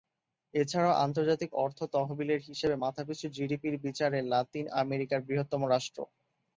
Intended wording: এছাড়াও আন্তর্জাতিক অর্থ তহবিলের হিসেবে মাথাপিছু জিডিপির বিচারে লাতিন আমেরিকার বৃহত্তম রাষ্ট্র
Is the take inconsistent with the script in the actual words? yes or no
no